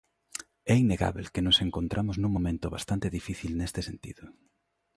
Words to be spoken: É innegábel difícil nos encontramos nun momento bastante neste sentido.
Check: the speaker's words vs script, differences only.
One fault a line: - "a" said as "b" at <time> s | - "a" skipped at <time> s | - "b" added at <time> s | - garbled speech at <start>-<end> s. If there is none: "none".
- "difícil" said as "que" at 1.3 s
- "difícil" added at 3.2 s